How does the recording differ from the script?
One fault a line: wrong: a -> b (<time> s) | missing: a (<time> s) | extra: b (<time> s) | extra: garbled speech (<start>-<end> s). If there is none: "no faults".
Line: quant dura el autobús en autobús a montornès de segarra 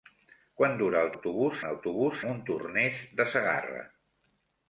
no faults